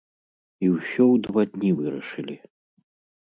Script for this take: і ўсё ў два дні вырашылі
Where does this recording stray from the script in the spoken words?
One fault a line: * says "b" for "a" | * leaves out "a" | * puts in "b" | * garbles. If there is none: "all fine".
all fine